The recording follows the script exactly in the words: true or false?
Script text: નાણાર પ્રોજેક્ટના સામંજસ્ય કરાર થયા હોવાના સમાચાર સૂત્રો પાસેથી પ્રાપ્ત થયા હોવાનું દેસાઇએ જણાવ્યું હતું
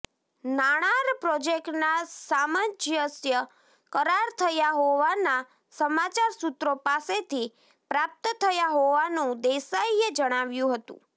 true